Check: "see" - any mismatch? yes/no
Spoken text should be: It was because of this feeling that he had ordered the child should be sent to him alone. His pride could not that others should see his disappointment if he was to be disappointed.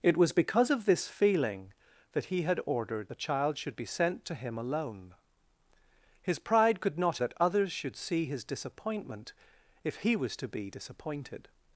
no